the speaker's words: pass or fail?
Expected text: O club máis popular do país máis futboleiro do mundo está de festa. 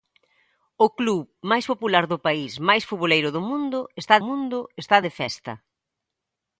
fail